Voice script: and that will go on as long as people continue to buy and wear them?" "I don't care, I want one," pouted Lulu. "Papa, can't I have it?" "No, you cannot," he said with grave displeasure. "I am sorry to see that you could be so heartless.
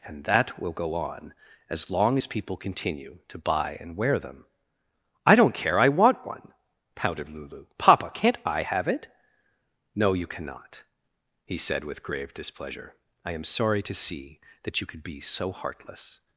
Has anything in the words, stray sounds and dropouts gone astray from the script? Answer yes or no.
no